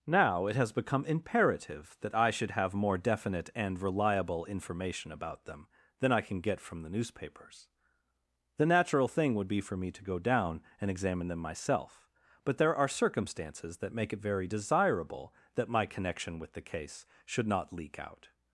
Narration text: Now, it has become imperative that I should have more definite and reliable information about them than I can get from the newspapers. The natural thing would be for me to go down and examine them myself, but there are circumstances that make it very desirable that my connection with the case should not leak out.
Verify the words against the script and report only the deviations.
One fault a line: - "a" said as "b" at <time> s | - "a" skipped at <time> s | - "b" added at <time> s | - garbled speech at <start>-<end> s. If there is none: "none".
none